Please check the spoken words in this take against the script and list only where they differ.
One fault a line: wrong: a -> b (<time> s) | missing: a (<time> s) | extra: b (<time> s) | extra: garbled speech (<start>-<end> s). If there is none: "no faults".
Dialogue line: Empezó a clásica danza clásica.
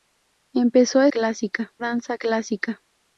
no faults